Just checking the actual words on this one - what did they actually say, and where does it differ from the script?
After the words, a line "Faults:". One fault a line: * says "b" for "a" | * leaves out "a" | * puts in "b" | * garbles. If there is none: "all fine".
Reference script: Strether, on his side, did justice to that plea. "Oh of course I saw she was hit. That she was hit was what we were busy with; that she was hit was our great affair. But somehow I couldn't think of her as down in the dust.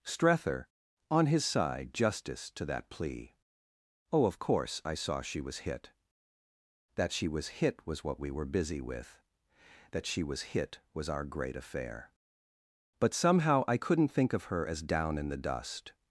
Strether, on his side, justice to that plea. "Oh of course I saw she was hit. That she was hit was what we were busy with; that she was hit was our great affair. But somehow I couldn't think of her as down in the dust.
Faults:
* leaves out "did"